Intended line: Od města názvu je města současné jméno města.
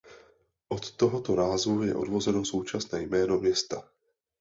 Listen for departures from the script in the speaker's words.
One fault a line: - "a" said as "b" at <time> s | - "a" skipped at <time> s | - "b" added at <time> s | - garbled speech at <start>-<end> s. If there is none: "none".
- "města" said as "tohoto" at 0.9 s
- "města" said as "odvozeno" at 1.9 s